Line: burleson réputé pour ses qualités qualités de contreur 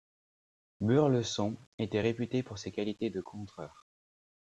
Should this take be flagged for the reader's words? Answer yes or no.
yes